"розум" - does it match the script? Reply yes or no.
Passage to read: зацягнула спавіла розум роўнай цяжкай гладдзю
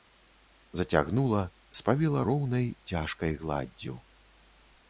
no